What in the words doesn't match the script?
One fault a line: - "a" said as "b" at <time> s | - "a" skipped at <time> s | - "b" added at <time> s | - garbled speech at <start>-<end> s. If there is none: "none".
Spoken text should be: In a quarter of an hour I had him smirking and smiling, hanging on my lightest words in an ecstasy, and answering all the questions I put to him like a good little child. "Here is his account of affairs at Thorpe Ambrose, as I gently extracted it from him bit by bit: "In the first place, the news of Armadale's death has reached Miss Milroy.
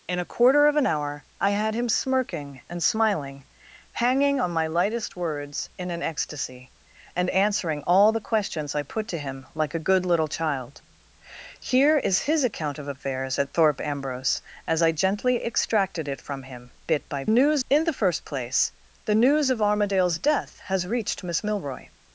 - "bit" said as "news" at 17.3 s